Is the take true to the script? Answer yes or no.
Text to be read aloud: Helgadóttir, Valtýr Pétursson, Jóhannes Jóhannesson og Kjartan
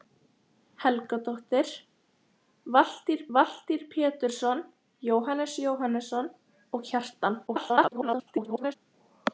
no